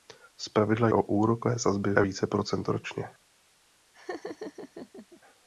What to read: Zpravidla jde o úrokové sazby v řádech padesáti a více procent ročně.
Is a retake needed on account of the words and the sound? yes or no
yes